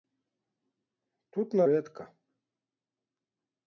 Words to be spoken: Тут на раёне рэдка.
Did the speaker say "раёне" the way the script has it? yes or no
no